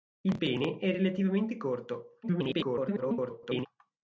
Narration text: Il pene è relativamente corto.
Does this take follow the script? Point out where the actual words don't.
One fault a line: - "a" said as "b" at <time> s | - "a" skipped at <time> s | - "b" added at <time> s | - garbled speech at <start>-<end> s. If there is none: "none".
- garbled speech at 2.2-3.7 s